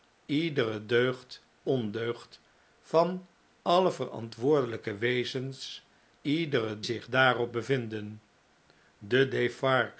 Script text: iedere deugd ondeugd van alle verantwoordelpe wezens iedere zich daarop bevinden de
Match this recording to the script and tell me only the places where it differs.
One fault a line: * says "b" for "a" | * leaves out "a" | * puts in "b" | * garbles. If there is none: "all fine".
all fine